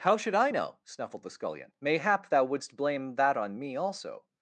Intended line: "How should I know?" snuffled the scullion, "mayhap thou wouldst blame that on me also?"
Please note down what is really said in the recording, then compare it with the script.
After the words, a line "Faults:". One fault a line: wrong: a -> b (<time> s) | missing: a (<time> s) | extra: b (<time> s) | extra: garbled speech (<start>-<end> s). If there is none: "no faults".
"How should I know?" snuffled the scullion, "mayhap thou wouldst blame that on me also?"
Faults:
no faults